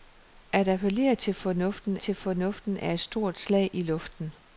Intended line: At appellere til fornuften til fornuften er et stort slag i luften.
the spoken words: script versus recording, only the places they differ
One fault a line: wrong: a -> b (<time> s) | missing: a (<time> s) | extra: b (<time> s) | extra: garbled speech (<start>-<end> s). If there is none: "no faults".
no faults